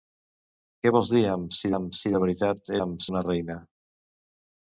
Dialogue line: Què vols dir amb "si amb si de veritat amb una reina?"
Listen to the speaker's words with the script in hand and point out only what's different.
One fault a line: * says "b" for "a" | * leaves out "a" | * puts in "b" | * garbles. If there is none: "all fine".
all fine